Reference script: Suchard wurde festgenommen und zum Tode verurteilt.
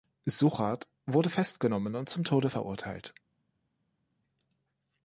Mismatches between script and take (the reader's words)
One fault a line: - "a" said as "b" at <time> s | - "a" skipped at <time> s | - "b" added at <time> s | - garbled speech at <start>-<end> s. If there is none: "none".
none